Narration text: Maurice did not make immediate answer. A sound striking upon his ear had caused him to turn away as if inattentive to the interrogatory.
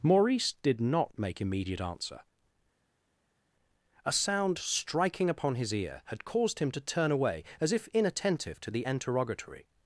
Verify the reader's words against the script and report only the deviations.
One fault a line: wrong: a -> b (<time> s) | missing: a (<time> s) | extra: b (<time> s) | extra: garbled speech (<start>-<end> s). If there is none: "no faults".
no faults